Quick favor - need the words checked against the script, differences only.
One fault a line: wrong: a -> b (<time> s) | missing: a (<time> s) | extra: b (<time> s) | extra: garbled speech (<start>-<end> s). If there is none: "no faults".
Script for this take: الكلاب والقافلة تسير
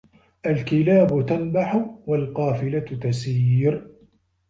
extra: تنبح (1.2 s)